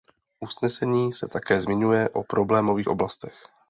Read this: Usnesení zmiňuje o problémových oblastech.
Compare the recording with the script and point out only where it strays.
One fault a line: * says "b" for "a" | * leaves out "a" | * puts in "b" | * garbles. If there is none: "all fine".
* puts in "se také"